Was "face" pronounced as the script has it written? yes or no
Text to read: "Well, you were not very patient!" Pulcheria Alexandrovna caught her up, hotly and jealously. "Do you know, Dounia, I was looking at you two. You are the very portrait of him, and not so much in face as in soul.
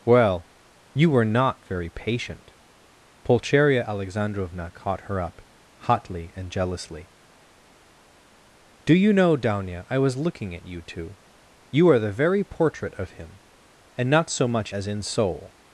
no